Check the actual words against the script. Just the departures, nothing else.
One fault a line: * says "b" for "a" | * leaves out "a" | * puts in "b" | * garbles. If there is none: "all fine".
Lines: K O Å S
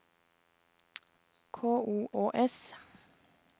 all fine